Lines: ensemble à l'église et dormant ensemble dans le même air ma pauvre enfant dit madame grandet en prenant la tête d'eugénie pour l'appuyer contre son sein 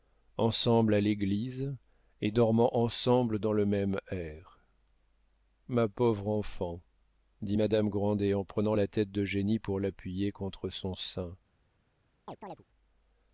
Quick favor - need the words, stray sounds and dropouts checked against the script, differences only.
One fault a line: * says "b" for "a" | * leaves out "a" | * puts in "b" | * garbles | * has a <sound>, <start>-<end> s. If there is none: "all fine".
* has a chirp, 12.3-12.6 s